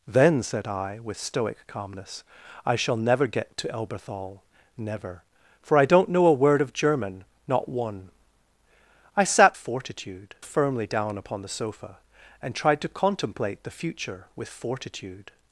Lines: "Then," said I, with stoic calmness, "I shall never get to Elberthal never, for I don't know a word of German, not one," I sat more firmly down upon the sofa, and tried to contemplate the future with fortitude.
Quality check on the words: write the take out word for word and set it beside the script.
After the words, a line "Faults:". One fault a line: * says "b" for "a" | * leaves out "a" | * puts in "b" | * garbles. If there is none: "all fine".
"Then," said I, with stoic calmness, "I shall never get to Elberthal never, for I don't know a word of German, not one," I sat fortitude firmly down upon the sofa, and tried to contemplate the future with fortitude.
Faults:
* says "fortitude" for "more"